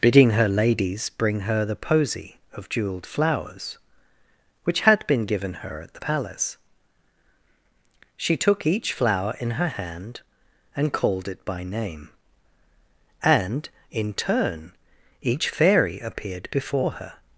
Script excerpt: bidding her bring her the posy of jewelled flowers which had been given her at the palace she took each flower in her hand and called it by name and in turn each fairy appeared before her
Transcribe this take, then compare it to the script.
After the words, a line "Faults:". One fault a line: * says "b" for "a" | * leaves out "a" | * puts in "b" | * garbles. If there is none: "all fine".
bidding her ladies bring her the posy of jewelled flowers which had been given her at the palace she took each flower in her hand and called it by name and in turn each fairy appeared before her
Faults:
* puts in "ladies"